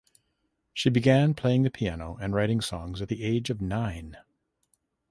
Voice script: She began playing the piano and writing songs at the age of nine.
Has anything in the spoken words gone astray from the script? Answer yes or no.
no